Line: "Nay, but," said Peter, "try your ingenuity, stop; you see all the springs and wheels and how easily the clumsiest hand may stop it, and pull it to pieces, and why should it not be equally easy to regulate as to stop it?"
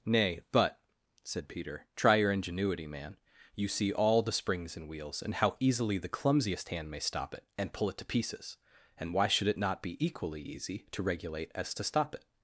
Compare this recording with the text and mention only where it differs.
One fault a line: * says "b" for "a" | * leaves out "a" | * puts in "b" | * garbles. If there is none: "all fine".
* says "man" for "stop"